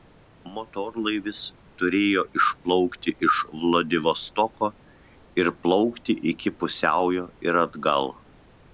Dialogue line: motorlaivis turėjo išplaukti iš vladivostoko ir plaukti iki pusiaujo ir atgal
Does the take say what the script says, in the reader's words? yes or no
yes